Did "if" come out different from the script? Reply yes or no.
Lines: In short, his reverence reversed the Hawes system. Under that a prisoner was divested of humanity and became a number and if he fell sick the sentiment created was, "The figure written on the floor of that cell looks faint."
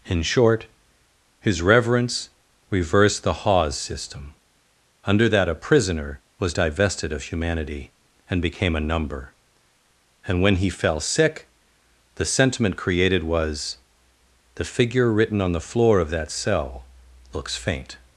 yes